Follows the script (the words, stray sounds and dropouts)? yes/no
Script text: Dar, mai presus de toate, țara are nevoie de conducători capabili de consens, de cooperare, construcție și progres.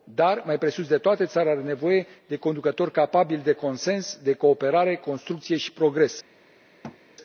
no